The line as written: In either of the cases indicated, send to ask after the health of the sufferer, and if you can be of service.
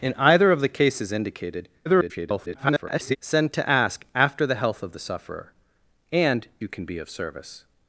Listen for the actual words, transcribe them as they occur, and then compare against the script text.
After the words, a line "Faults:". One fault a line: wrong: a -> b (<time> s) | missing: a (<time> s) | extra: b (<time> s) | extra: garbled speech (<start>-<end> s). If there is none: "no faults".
In either of the cases indicated, [garbled] send to ask after the health of the sufferer, and you can be of service.
Faults:
extra: garbled speech (1.9-3.2 s)
missing: if (6.5 s)